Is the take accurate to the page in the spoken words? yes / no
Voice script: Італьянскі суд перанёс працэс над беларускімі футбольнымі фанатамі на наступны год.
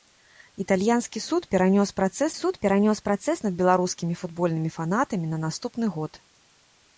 no